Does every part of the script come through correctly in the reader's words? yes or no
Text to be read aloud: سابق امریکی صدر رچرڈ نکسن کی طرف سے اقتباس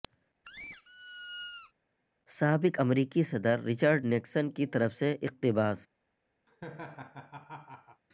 yes